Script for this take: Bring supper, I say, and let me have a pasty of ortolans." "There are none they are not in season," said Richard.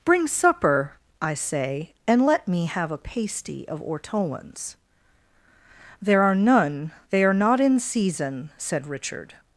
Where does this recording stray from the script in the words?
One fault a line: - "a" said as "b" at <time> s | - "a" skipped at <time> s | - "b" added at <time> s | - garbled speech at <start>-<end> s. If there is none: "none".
none